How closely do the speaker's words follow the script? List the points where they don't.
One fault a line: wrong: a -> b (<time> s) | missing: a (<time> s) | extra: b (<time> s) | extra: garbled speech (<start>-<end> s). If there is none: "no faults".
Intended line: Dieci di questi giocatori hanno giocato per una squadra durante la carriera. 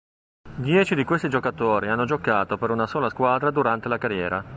extra: sola (2.9 s)